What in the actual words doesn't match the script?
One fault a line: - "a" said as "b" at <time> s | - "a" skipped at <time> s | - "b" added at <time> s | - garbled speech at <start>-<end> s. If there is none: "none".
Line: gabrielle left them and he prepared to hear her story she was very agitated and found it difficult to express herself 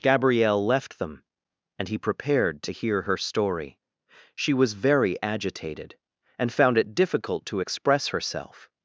none